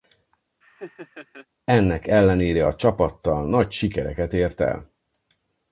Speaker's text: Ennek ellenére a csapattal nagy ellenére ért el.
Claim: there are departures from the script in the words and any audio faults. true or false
true